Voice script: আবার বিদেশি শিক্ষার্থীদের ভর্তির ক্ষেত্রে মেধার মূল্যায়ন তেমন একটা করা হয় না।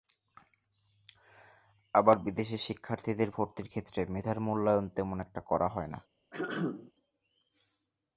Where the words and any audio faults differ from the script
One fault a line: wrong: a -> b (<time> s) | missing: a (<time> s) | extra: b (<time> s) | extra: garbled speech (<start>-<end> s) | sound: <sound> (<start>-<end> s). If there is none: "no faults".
sound: throat clearing (6.3-6.9 s)